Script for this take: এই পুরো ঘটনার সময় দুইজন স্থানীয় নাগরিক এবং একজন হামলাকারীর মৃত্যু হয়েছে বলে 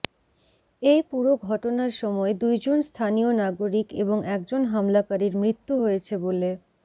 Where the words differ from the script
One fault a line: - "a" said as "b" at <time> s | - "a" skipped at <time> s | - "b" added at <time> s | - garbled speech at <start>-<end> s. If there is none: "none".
none